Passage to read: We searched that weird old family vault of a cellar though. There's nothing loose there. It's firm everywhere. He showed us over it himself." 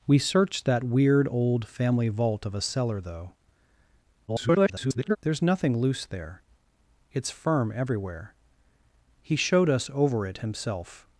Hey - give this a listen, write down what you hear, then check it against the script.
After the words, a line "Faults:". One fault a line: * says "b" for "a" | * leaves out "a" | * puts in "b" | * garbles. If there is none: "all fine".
We searched that weird old family vault of a cellar though. [garbled] There's nothing loose there. It's firm everywhere. He showed us over it himself."
Faults:
* garbles